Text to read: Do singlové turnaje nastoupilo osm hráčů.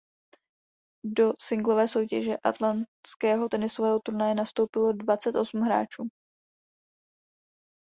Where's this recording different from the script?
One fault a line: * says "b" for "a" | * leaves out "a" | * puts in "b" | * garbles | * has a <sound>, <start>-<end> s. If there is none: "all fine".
* puts in "soutěže atlantského tenisového"
* puts in "dvacet"